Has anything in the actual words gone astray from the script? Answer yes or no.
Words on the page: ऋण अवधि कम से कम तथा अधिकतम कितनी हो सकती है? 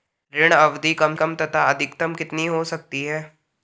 yes